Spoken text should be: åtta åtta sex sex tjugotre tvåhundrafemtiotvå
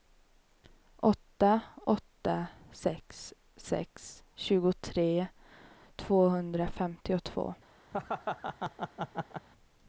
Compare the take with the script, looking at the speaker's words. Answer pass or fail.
pass